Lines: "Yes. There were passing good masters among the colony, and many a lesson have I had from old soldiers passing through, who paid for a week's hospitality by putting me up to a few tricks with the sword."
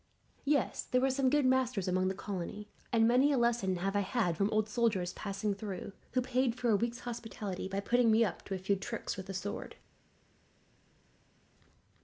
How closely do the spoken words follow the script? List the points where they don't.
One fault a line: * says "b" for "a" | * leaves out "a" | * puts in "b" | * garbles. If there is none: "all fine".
* says "some" for "passing"